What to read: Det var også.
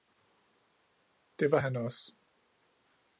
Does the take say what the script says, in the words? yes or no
no